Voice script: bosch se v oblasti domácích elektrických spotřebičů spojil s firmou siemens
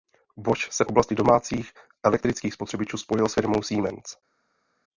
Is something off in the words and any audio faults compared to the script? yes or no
no